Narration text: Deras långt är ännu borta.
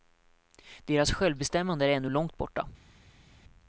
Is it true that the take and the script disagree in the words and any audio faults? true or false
true